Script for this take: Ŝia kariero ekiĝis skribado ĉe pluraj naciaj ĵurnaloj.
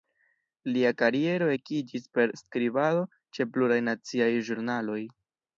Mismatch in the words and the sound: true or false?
true